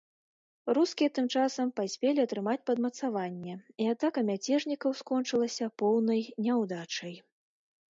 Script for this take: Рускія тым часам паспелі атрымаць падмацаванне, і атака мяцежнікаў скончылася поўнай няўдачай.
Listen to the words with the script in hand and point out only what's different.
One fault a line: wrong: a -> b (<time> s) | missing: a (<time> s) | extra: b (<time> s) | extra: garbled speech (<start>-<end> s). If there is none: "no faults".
no faults